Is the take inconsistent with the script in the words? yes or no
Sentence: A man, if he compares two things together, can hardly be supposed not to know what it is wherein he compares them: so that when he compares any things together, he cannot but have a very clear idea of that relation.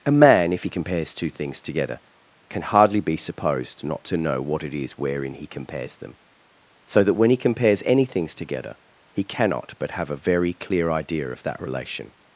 no